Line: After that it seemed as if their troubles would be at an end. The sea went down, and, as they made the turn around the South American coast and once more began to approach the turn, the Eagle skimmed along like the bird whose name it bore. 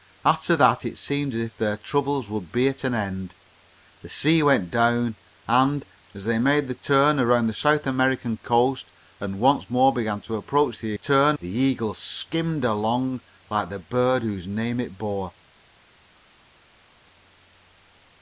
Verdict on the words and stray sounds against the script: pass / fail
pass